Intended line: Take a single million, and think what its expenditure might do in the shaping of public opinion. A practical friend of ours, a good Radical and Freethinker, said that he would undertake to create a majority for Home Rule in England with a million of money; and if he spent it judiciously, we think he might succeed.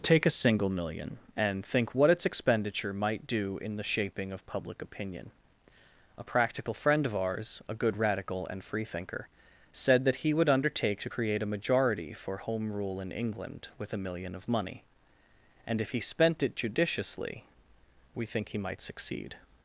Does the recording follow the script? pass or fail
pass